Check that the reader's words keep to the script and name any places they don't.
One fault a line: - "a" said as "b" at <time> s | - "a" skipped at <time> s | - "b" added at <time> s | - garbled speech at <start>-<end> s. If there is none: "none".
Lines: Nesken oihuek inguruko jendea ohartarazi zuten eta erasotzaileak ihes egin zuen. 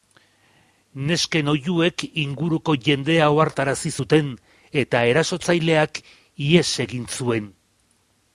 none